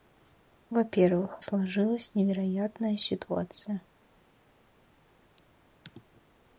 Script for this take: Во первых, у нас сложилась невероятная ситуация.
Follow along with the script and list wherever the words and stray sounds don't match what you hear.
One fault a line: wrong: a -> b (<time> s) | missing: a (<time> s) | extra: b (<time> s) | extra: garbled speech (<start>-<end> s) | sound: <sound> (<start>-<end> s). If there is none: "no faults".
missing: нас (1.4 s)